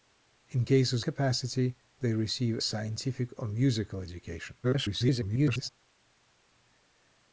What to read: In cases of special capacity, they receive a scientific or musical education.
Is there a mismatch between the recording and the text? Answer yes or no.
yes